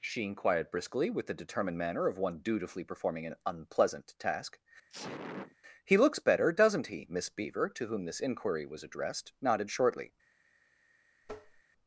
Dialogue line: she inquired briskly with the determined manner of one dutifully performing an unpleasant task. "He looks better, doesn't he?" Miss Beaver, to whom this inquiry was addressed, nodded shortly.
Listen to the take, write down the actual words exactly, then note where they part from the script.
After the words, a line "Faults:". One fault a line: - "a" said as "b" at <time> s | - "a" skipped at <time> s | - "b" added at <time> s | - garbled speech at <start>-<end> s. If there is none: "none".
she inquired briskly with the determined manner of one dutifully performing an unpleasant task. "He looks better, doesn't he?" Miss Beaver, to whom this inquiry was addressed, nodded shortly.
Faults:
none